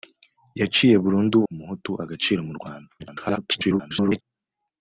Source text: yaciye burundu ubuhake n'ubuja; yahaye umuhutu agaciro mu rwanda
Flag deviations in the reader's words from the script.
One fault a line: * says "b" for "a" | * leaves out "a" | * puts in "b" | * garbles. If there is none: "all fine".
* leaves out "ubuhake n'ubuja yahaye"
* garbles